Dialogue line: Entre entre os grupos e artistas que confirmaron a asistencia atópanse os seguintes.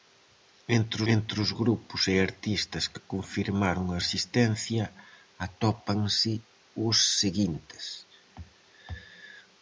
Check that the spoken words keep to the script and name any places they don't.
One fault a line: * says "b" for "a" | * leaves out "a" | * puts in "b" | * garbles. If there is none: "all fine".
all fine